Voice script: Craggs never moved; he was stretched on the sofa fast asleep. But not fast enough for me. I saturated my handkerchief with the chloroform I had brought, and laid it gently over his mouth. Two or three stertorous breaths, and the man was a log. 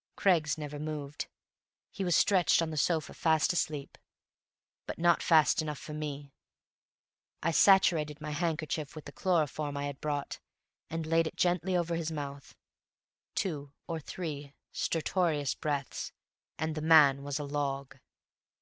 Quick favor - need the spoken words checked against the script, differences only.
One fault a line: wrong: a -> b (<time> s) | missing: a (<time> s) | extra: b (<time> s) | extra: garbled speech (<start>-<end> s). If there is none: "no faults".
no faults